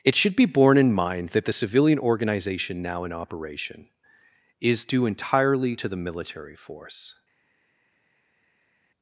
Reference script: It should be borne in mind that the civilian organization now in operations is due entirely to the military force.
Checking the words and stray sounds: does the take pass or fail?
fail